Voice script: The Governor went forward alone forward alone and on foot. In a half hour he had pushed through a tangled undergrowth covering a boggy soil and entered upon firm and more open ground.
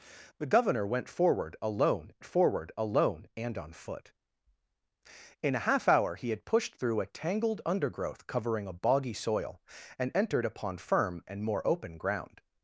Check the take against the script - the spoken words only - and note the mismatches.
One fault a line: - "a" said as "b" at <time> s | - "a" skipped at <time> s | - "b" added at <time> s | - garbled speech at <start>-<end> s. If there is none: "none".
none